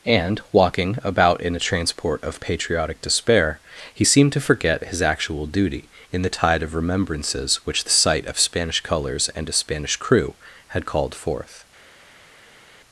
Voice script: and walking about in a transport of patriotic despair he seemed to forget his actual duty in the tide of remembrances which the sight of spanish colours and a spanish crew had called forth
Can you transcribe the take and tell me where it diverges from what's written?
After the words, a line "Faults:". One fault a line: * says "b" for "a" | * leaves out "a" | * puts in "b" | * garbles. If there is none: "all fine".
and walking about in a transport of patriotic despair he seemed to forget his actual duty in the tide of remembrances which the sight of spanish colours and a spanish crew had called forth
Faults:
all fine